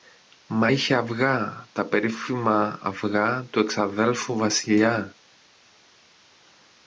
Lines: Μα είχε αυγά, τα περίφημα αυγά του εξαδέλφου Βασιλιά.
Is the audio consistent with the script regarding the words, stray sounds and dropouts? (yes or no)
yes